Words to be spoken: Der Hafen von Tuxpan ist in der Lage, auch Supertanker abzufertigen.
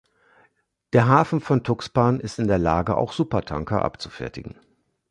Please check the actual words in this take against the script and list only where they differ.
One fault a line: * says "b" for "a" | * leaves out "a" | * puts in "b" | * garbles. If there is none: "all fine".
all fine